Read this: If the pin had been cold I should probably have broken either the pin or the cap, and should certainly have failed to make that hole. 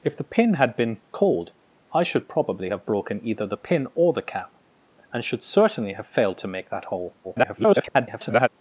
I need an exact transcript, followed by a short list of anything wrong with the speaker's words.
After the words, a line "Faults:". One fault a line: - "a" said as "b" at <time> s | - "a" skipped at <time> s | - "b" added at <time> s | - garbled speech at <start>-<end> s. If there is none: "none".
If the pin had been cold I should probably have broken either the pin or the cap, and should certainly have failed to make that hole. [garbled]
Faults:
- garbled speech at 7.2-8.5 s